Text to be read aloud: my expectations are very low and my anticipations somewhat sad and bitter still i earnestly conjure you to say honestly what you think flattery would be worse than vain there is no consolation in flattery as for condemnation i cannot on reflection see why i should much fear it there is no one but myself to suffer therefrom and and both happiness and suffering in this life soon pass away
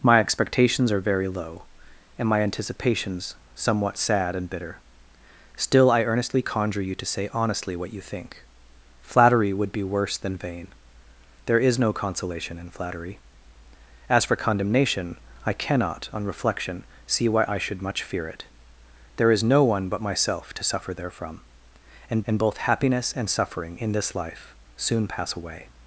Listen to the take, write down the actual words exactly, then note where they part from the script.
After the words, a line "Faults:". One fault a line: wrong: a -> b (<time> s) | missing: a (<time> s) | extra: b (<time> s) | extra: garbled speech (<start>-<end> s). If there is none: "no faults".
my expectations are very low and my anticipations somewhat sad and bitter still i earnestly conjure you to say honestly what you think flattery would be worse than vain there is no consolation in flattery as for condemnation i cannot on reflection see why i should much fear it there is no one but myself to suffer therefrom and and both happiness and suffering in this life soon pass away
Faults:
no faults